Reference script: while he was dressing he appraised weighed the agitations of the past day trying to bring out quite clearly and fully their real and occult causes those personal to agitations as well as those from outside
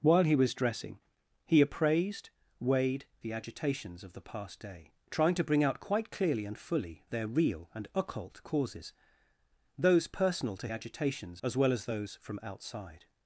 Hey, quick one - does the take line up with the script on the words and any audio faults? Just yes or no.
yes